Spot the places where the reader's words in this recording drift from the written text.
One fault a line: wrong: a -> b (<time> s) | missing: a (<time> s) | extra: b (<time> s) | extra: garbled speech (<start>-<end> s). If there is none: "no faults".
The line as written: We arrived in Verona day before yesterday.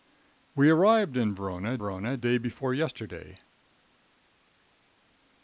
extra: Verona (1.8 s)